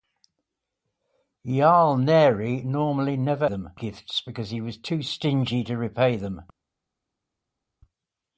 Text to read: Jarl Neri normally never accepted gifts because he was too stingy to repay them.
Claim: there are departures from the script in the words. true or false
true